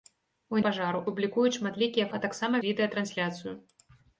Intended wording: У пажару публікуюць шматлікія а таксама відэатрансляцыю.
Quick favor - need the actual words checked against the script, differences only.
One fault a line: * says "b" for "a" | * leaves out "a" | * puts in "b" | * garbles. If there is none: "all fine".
all fine